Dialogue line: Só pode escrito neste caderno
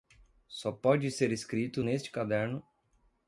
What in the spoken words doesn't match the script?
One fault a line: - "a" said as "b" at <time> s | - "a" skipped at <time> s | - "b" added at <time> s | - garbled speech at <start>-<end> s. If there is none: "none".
- "ser" added at 1.1 s